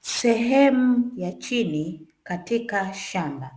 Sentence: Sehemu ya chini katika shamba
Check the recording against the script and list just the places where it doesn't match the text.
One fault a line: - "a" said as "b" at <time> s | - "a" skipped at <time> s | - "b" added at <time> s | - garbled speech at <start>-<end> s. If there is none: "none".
none